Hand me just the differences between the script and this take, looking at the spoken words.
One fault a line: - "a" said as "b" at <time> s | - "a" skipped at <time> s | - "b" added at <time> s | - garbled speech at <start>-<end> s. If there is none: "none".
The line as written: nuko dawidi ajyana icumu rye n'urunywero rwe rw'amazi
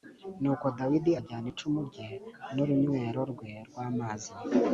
none